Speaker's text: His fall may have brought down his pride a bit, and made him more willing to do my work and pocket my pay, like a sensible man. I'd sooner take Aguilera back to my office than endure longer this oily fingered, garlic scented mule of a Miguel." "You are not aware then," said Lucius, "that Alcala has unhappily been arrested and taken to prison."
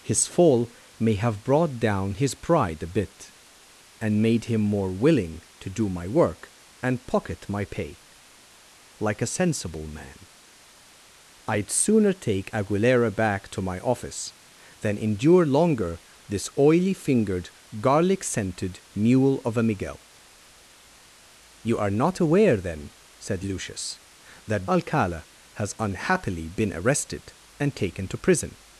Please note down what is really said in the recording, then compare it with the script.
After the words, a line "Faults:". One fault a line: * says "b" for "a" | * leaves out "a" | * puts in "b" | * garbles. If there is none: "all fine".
His fall may have brought down his pride a bit, and made him more willing to do my work and pocket my pay, like a sensible man. I'd sooner take Aguilera back to my office than endure longer this oily fingered, garlic scented mule of a Miguel." "You are not aware then," said Lucius, "that Alcala has unhappily been arrested and taken to prison."
Faults:
all fine